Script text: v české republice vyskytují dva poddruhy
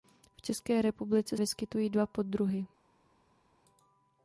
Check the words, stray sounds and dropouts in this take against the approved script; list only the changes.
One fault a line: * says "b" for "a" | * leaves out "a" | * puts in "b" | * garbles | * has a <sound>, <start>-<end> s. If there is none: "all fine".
all fine